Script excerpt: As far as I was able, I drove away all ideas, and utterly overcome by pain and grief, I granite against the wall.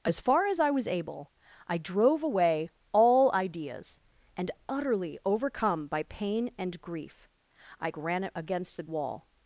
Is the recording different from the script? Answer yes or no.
no